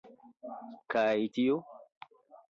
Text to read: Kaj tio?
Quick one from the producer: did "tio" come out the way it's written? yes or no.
yes